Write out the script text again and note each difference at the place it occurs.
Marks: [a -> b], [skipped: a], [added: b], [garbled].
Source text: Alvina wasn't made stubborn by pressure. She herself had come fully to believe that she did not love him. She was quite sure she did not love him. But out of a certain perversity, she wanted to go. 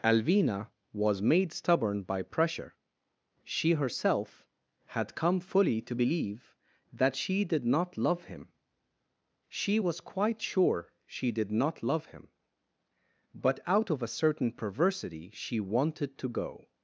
Alvina [wasn't -> was] made stubborn by pressure. She herself had come fully to believe that she did not love him. She was quite sure she did not love him. But out of a certain perversity, she wanted to go.